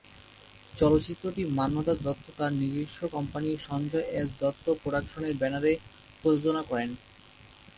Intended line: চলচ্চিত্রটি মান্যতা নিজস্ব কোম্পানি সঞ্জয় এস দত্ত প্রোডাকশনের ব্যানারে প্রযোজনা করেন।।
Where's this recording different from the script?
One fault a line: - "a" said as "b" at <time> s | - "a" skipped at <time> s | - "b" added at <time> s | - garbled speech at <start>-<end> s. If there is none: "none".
- "দত্ত তার" added at 2.0 s